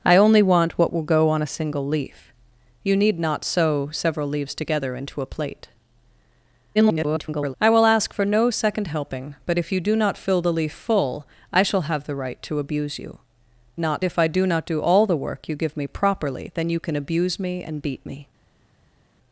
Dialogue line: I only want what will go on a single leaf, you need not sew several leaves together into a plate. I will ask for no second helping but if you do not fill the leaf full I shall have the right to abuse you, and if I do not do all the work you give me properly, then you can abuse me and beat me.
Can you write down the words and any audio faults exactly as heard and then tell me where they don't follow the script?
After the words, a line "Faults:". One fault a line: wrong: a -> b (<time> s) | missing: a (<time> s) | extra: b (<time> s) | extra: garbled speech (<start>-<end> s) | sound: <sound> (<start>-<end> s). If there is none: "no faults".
I only want what will go on a single leaf, you need not sew several leaves together into a plate. [garbled] I will ask for no second helping but if you do not fill the leaf full I shall have the right to abuse you, not if I do not do all the work you give me properly, then you can abuse me and beat me.
Faults:
extra: garbled speech (6.7-7.5 s)
wrong: and -> not (13.8 s)